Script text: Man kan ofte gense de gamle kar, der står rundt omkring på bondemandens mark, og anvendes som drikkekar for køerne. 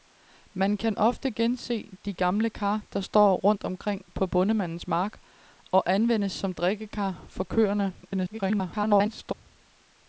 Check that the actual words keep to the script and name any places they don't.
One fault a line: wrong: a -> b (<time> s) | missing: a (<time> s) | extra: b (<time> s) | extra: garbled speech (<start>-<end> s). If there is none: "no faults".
extra: garbled speech (8.0-9.3 s)